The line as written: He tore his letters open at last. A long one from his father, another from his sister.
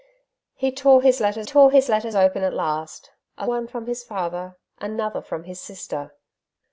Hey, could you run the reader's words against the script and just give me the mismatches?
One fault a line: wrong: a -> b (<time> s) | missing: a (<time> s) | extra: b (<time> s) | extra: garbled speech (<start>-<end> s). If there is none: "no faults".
extra: tore his letters (1.4 s)
missing: long (3.5 s)